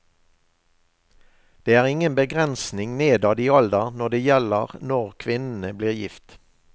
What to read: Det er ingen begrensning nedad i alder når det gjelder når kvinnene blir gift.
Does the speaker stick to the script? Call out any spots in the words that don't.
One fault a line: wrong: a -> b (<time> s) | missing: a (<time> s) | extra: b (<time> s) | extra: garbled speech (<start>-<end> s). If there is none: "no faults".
no faults